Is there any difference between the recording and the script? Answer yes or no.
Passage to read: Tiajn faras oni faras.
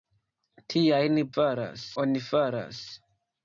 no